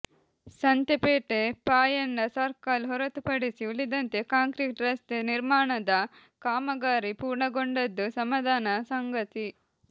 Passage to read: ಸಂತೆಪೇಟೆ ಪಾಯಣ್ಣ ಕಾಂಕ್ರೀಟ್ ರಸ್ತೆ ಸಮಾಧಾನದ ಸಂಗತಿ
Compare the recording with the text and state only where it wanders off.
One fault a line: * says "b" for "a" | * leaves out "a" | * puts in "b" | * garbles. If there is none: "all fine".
* puts in "ಸರ್ಕಲ್ ಹೊರತುಪಡಿಸಿ ಉಳಿದಂತೆ"
* puts in "ನಿರ್ಮಾಣದ ಕಾಮಗಾರಿ ಪೂರ್ಣಗೊಂಡದ್ದು"